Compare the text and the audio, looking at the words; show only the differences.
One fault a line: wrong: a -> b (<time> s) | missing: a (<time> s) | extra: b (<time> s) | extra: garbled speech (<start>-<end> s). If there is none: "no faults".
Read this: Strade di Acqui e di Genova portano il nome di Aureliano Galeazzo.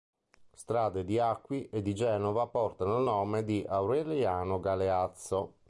no faults